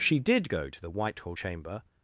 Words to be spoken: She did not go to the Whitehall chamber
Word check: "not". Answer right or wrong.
wrong